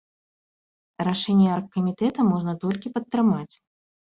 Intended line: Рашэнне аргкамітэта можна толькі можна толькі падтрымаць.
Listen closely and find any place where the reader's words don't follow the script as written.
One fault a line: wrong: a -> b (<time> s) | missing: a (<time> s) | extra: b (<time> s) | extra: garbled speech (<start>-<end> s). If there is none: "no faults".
missing: можна толькі (2.9 s)